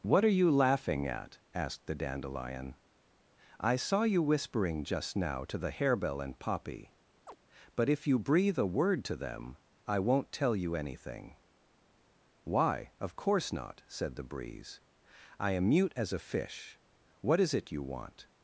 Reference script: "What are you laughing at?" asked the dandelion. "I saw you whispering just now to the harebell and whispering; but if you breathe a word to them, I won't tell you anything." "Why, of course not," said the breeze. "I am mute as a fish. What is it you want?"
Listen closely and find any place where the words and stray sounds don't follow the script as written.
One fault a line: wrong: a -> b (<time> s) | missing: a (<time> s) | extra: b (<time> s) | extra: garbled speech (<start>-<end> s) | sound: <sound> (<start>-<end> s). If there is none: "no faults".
wrong: whispering -> poppy (6.4 s)
sound: chirp (7.3-7.4 s)